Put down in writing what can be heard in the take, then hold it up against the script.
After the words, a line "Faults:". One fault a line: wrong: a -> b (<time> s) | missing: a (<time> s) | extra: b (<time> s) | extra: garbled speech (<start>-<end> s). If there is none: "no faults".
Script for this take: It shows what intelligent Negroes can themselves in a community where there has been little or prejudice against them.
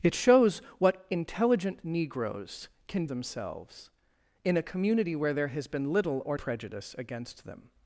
It shows what intelligent Negroes can themselves in a community where there has been little or prejudice against them.
Faults:
no faults